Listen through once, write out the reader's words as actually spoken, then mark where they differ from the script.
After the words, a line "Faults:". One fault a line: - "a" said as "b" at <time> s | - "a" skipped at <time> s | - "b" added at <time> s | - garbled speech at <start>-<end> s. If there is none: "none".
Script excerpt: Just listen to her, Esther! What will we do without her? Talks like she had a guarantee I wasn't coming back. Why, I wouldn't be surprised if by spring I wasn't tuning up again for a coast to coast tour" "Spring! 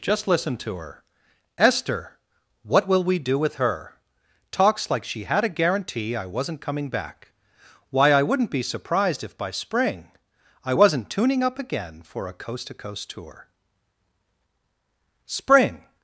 Just listen to her, Esther! What will we do with her? Talks like she had a guarantee I wasn't coming back. Why, I wouldn't be surprised if by spring I wasn't tuning up again for a coast to coast tour" "Spring!
Faults:
- "without" said as "with" at 3.4 s